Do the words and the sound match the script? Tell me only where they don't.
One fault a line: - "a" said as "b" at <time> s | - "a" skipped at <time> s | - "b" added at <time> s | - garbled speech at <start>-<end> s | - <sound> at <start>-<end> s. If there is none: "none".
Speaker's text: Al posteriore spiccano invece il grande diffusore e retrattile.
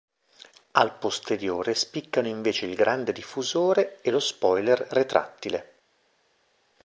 - "lo spoiler" added at 4.1 s